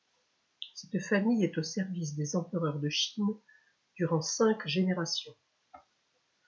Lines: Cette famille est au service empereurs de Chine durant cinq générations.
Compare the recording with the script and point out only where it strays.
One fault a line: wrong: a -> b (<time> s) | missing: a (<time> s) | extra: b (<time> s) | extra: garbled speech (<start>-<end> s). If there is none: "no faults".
extra: des (2.1 s)